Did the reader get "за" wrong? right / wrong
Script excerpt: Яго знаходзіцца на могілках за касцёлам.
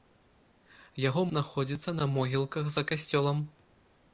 right